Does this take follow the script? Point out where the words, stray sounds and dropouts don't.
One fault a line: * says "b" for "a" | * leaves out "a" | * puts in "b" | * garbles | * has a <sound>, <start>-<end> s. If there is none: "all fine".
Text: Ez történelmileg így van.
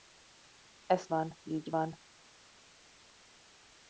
* says "van" for "történelmileg"